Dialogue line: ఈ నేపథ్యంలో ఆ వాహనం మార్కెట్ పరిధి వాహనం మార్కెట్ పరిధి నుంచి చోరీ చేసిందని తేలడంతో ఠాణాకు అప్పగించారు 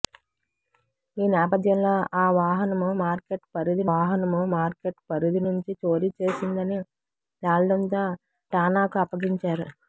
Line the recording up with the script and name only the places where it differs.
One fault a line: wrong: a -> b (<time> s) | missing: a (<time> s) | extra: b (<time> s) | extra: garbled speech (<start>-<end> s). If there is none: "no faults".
no faults